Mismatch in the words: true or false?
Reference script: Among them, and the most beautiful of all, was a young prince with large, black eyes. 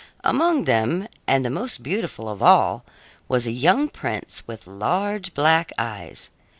false